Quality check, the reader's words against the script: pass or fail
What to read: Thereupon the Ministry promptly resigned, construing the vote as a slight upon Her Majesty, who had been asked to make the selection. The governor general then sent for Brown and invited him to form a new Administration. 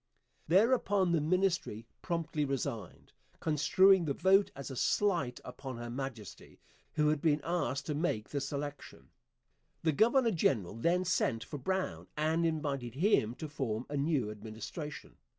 pass